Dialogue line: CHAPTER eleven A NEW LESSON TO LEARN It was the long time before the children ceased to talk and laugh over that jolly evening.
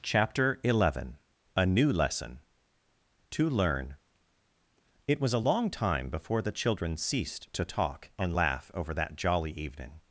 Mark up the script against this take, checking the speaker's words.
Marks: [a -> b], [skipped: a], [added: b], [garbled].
CHAPTER eleven A NEW LESSON TO LEARN It was [the -> a] long time before the children ceased to talk and laugh over that jolly evening.